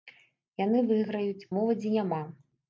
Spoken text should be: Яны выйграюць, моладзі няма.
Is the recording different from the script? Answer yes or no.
no